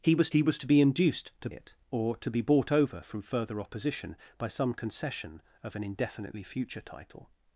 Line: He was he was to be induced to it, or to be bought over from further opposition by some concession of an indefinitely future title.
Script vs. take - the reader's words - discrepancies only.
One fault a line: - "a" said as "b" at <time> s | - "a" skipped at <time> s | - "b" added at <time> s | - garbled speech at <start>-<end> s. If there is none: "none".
none